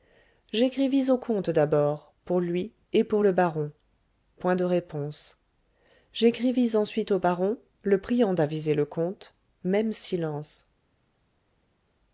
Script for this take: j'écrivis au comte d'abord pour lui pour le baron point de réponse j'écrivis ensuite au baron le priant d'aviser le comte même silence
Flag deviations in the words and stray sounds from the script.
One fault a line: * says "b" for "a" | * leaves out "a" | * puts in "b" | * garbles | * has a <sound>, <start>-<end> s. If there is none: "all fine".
* puts in "et"